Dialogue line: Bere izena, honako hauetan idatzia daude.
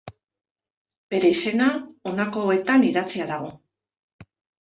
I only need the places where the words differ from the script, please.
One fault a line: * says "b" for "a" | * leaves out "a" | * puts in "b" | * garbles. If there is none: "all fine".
* says "dago" for "daude"